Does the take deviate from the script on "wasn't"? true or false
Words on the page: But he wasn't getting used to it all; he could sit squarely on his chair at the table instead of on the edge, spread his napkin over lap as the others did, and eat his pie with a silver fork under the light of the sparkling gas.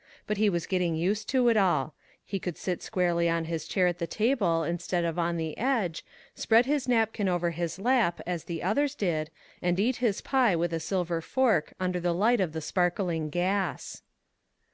true